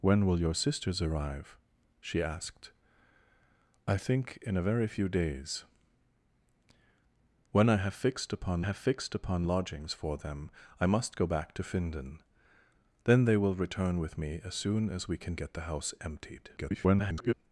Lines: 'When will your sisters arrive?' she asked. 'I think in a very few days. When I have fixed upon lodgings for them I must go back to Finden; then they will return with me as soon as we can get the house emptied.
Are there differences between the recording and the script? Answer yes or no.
yes